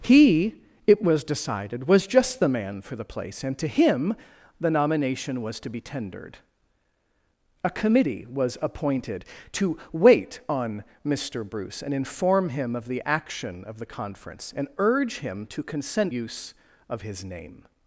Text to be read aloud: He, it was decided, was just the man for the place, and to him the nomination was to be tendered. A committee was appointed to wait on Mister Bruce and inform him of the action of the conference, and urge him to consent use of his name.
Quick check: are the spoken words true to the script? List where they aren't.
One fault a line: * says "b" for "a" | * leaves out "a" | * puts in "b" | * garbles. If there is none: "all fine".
all fine